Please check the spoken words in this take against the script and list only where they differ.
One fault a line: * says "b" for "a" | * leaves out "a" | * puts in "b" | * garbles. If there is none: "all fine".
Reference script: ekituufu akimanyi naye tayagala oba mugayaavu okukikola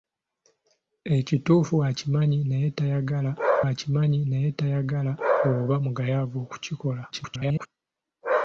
* puts in "akimanyi naye tayagala"
* garbles